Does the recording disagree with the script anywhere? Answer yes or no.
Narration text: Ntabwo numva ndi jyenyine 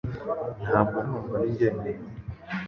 no